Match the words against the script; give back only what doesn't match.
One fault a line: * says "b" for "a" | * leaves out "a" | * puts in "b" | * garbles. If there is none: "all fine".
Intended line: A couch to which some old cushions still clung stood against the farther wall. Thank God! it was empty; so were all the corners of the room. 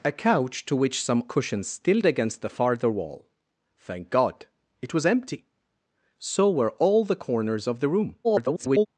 * leaves out "old"
* leaves out "clung stood"
* garbles